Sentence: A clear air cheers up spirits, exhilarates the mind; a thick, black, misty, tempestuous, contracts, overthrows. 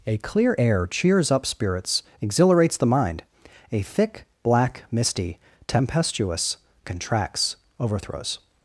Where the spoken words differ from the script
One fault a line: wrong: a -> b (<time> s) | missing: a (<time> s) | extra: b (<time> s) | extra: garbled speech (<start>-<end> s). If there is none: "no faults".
no faults